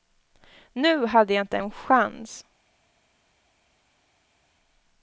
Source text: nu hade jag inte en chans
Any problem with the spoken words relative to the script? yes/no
no